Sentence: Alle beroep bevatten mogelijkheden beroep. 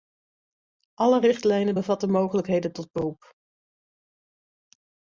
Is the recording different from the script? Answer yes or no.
yes